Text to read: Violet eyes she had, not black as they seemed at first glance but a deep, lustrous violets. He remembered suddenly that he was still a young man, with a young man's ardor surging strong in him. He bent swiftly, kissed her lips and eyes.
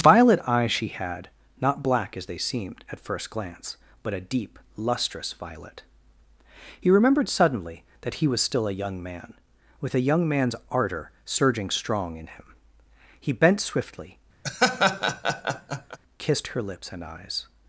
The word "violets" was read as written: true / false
false